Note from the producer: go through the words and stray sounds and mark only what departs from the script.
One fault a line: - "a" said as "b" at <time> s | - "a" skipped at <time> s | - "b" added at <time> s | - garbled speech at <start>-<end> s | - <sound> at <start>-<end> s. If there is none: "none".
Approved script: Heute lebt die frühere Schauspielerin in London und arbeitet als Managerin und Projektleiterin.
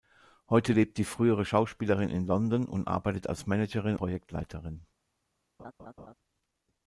- "und" skipped at 4.0 s
- laugh at 5.6-6.1 s